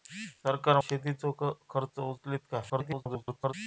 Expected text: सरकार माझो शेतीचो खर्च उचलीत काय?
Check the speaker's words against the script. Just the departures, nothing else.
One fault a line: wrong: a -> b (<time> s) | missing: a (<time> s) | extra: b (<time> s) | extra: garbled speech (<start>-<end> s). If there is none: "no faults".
missing: माझो (0.8 s)
extra: garbled speech (2.7-3.5 s)